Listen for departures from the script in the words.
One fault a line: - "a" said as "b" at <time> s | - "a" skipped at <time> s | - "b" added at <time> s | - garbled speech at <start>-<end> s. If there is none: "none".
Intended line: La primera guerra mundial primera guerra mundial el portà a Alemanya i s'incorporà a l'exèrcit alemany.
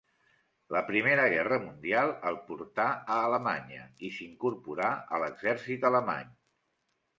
- "primera guerra mundial" skipped at 2.1 s